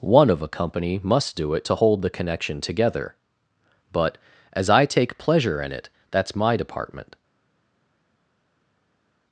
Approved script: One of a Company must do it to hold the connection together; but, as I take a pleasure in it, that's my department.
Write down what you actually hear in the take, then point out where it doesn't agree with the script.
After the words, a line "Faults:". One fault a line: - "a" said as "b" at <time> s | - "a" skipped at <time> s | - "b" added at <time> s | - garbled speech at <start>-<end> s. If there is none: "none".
One of a Company must do it to hold the connection together; but, as I take pleasure in it, that's my department.
Faults:
- "a" skipped at 5.2 s